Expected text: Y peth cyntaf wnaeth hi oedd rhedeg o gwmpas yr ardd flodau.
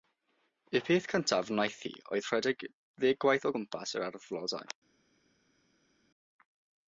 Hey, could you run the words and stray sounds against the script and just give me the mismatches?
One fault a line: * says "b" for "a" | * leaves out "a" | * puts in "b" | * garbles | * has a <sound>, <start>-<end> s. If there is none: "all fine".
* puts in "ddeg gwaith"